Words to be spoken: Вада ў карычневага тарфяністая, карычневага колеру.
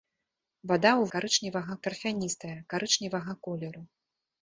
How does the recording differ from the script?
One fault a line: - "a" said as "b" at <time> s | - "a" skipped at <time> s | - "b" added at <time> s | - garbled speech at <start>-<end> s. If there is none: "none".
none